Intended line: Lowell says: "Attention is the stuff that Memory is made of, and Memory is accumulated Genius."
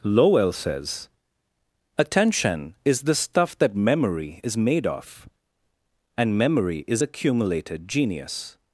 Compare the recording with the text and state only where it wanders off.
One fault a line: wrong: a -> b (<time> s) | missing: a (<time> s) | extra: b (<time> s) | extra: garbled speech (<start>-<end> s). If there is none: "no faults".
no faults